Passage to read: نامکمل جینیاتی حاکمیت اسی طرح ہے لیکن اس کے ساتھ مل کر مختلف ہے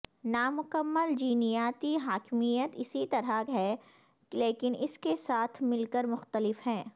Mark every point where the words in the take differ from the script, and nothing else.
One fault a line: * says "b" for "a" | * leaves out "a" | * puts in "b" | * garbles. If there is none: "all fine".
all fine